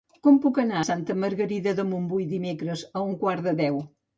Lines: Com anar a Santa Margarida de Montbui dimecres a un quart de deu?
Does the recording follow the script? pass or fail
fail